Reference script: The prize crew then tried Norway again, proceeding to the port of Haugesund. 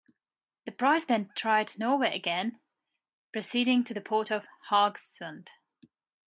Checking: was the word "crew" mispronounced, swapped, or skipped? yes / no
yes